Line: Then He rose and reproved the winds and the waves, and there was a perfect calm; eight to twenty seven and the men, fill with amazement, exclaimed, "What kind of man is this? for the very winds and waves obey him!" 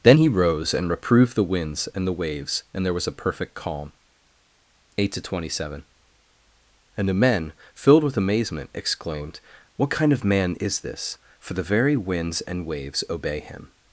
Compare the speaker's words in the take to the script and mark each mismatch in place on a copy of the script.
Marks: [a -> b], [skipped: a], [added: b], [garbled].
Then He rose and reproved the winds and the waves, and there was a perfect calm; eight to twenty seven and the men, [fill -> filled] with amazement, exclaimed, "What kind of man is this? for the very winds and waves obey him!"